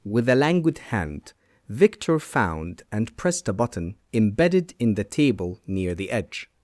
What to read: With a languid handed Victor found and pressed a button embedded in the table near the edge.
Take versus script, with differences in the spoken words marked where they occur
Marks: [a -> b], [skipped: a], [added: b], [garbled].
With a languid [handed -> hand] Victor found and pressed a button embedded in the table near the edge.